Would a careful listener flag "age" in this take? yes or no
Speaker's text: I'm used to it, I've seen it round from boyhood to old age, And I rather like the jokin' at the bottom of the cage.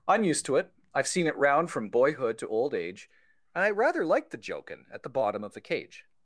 no